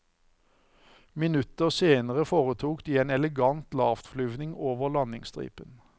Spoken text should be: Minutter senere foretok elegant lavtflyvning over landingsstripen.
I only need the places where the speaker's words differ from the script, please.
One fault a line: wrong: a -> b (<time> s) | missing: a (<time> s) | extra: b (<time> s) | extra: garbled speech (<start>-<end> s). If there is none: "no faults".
extra: de en (2.9 s)